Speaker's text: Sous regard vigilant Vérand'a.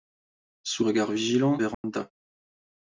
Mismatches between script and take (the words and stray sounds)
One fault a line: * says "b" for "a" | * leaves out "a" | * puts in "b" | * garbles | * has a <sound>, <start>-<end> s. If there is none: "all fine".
* has a dropout, 1.7-1.8 s